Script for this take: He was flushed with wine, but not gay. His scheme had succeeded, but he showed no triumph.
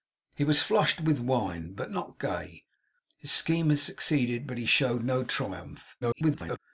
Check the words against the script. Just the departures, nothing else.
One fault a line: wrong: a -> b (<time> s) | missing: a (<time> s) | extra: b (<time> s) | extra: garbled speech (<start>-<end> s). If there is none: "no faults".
extra: garbled speech (6.0-6.6 s)